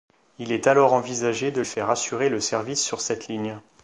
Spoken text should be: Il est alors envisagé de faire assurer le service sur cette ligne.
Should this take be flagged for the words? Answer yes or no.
no